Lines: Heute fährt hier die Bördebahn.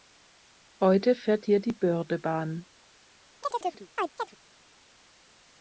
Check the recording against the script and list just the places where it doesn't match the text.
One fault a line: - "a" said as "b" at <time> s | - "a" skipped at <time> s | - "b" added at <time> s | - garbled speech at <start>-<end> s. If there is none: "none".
none